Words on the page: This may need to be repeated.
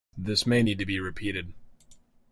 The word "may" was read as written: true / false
true